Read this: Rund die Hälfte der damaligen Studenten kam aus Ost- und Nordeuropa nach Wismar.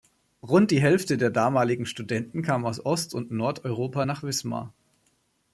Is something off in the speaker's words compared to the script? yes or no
no